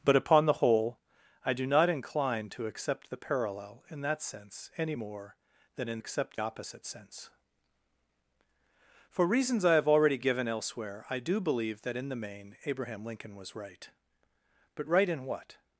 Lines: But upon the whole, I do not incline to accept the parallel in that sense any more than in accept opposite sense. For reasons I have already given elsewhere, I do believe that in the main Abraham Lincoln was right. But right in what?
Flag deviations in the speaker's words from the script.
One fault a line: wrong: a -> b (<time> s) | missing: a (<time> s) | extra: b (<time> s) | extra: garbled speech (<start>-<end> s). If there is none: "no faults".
no faults